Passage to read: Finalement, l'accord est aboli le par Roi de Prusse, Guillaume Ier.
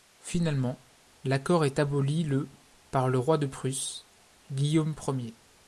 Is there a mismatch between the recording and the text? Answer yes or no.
yes